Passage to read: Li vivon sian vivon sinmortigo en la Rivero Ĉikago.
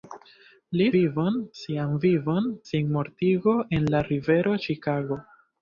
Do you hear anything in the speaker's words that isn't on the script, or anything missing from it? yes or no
no